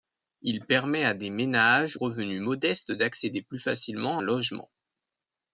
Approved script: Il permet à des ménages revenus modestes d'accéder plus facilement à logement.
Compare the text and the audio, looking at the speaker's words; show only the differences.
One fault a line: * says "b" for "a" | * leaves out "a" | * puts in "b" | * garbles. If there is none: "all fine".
all fine